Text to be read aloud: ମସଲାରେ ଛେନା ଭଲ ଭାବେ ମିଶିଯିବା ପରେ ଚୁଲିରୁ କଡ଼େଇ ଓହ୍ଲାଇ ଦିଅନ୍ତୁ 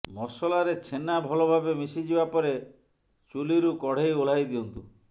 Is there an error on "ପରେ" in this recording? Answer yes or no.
no